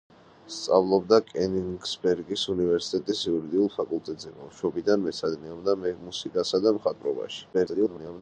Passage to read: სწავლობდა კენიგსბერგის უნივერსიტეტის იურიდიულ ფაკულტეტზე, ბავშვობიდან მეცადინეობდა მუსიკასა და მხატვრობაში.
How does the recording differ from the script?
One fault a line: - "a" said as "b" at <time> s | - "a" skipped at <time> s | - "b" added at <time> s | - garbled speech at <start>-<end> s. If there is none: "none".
- garbled speech at 7.5-8.2 s